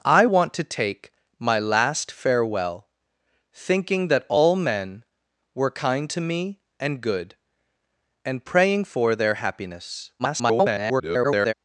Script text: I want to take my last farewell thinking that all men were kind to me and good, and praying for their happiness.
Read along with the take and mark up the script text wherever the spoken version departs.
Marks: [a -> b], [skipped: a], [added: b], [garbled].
I want to take my last farewell thinking that all men were kind to me and good, and praying for their happiness. [garbled]